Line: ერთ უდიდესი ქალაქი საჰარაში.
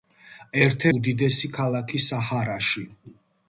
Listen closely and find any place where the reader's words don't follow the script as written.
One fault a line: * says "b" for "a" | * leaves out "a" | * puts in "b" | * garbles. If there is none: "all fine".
all fine